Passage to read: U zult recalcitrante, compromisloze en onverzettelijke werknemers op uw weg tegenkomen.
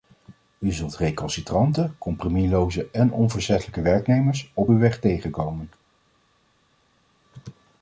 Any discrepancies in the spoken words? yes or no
no